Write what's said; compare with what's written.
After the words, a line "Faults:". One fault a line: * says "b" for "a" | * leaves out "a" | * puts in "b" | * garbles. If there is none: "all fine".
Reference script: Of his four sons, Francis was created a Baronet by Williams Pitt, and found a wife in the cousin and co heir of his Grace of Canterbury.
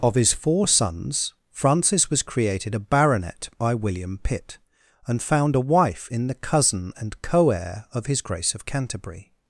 Of his four sons, Francis was created a Baronet by William Pitt, and found a wife in the cousin and co heir of his Grace of Canterbury.
Faults:
* says "William" for "Williams"